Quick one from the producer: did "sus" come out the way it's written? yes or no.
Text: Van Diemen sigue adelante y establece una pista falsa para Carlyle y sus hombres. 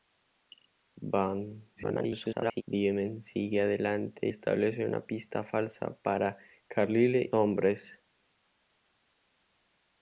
no